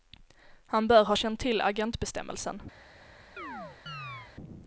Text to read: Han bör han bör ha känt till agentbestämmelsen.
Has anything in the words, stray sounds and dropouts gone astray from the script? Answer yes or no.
yes